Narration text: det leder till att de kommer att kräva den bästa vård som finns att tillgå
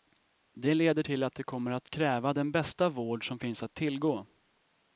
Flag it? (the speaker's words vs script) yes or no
no